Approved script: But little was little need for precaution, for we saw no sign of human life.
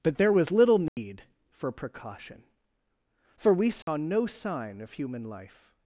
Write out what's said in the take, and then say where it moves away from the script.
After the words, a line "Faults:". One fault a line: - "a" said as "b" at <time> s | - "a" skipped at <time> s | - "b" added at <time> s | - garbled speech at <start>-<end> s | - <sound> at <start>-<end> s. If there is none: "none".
But there was little need for precaution, for we saw no sign of human life.
Faults:
- "little" said as "there" at 0.2 s
- dropout at 0.9-1.0 s
- dropout at 3.8-3.9 s